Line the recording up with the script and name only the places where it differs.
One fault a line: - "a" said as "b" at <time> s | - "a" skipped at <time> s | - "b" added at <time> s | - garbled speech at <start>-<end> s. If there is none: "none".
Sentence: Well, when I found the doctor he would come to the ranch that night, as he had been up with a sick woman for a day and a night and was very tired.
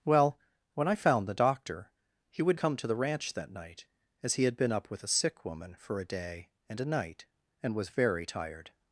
none